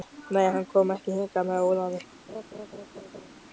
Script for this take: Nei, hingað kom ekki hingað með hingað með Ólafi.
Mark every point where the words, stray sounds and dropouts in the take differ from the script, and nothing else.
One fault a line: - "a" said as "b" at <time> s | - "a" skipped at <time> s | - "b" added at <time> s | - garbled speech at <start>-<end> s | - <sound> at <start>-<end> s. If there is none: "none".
- "hingað" said as "hann" at 0.5 s
- "hingað með" skipped at 1.6 s
- laugh at 2.3-3.3 s